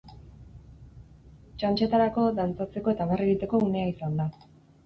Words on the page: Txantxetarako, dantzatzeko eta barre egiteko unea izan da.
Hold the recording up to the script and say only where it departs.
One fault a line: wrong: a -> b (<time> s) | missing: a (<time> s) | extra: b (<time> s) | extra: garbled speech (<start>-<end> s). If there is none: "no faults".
no faults